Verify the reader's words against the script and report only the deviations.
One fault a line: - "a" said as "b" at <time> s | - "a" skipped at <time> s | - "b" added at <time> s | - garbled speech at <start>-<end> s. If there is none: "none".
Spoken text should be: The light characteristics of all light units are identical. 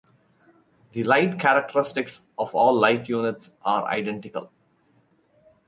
none